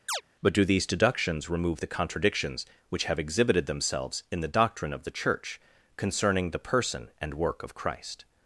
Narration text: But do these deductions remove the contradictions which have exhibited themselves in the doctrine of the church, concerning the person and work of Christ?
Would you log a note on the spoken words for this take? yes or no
no